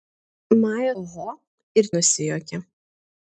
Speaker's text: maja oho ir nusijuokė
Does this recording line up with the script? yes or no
yes